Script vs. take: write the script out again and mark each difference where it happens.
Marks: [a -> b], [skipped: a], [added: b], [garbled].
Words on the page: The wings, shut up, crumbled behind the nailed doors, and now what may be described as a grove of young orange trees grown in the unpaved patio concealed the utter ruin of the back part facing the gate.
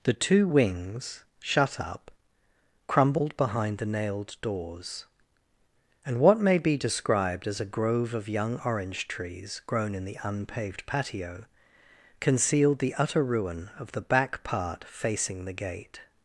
The [added: two] wings, shut up, crumbled behind the nailed doors, and [skipped: now] what may be described as a grove of young orange trees grown in the unpaved patio concealed the utter ruin of the back part facing the gate.